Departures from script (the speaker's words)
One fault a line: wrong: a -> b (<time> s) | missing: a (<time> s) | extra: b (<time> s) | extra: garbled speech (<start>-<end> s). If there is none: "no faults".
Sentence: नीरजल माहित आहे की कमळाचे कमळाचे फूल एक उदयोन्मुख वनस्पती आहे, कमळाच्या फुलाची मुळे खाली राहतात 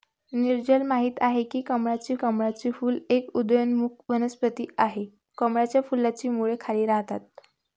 no faults